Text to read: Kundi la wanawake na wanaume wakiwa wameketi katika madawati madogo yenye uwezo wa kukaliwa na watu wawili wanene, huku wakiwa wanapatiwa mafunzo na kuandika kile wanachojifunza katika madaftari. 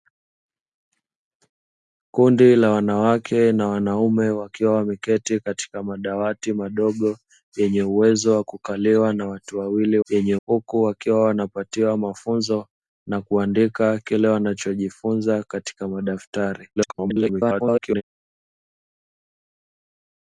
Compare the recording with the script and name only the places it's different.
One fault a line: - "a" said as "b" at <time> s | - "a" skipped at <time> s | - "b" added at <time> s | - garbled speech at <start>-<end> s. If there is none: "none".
- "wanene" said as "yenye" at 10.1 s
- garbled speech at 16.8-18.0 s